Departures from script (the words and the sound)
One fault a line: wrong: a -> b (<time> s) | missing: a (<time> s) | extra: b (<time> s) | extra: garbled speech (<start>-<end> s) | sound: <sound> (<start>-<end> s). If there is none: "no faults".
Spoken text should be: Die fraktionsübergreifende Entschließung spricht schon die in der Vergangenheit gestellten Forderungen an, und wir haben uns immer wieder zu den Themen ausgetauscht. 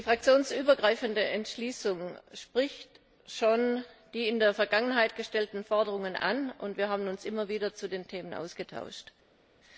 no faults